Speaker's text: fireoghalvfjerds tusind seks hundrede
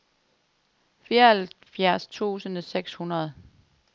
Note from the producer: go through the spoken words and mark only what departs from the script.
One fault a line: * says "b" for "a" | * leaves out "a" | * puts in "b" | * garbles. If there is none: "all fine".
all fine